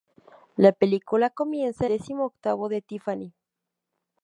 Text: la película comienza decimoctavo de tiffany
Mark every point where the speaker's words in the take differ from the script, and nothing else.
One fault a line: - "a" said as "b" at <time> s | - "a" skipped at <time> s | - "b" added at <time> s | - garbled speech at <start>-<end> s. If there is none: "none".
none